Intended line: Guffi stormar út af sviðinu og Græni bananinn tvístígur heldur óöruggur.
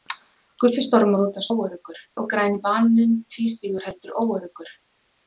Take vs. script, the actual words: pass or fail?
fail